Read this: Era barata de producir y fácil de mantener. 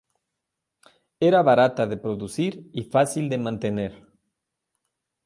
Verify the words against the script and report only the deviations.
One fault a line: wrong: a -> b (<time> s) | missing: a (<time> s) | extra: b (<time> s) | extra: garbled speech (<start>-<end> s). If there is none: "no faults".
no faults